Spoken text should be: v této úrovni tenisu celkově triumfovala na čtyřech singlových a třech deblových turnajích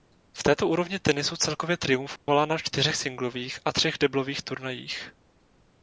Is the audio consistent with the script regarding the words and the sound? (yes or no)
no